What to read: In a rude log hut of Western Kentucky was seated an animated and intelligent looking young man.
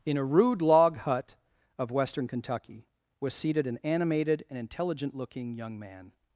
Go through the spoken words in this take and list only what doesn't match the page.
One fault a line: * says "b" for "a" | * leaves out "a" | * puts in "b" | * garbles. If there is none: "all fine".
all fine